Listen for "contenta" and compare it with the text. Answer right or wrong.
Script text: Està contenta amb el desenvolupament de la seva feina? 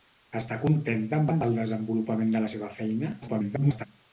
right